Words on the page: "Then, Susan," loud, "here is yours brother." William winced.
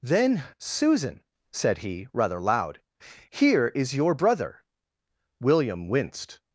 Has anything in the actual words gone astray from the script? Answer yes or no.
yes